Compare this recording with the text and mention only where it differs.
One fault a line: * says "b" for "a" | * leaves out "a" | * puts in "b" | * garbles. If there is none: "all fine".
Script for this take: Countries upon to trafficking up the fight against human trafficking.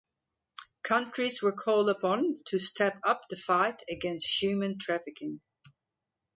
* puts in "were called"
* says "step" for "trafficking"